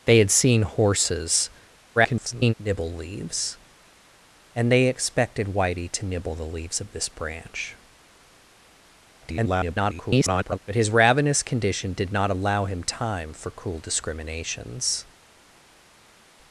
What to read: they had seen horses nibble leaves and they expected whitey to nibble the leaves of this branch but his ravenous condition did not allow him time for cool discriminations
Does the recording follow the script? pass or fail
fail